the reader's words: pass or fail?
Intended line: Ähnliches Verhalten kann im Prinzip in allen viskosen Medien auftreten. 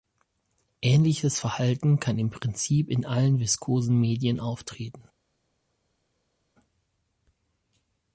pass